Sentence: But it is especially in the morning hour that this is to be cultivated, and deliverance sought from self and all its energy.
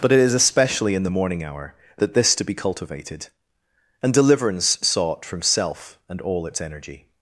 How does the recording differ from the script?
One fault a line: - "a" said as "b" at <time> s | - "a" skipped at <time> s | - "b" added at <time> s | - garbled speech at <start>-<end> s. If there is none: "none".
- "is" skipped at 2.4 s